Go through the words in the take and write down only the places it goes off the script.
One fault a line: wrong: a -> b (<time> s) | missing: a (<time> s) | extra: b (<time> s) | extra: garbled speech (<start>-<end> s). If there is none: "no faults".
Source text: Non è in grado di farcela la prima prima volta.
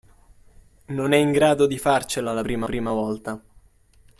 no faults